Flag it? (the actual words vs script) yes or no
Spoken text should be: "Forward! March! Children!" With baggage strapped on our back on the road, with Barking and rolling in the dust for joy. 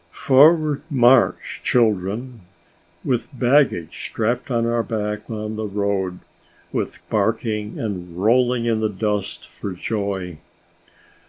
no